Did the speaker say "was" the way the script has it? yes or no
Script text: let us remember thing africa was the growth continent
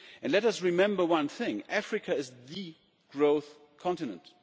no